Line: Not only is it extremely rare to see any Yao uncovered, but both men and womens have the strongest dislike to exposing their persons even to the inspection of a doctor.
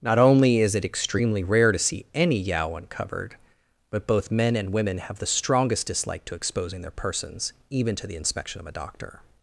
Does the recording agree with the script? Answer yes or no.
no